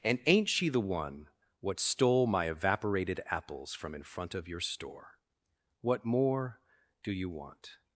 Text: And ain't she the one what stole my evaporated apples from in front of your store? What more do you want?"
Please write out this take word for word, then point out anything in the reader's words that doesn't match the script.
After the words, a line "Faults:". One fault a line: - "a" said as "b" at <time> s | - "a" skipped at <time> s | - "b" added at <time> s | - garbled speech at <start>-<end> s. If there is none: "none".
And ain't she the one what stole my evaporated apples from in front of your store? What more do you want?"
Faults:
none